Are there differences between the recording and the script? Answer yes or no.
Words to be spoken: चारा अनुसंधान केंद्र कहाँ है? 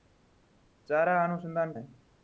yes